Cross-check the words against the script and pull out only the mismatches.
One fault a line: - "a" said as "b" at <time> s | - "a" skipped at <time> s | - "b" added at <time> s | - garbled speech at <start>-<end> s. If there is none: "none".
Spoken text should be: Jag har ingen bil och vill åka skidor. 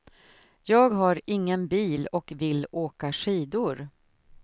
none